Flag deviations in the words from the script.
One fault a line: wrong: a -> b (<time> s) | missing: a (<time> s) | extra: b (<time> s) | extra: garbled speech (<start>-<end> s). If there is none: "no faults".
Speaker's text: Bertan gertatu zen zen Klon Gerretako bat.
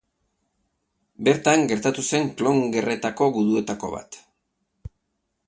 missing: zen (2.2 s)
extra: guduetako (3.4 s)